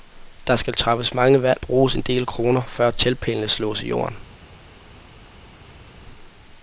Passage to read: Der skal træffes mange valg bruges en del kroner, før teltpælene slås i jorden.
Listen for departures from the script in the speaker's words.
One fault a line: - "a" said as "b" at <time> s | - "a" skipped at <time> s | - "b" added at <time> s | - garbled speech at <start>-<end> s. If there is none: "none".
none